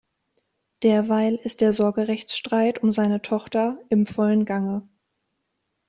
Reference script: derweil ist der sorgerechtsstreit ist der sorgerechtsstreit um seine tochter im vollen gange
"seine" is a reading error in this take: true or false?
false